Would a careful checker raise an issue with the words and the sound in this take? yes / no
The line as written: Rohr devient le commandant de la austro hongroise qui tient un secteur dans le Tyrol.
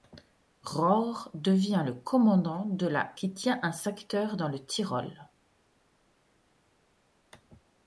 yes